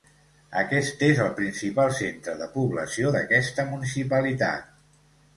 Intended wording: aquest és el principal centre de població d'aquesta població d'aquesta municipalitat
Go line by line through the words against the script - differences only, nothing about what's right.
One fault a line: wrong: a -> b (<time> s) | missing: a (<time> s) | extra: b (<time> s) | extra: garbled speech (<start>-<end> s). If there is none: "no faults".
missing: població d'aquesta (3.7 s)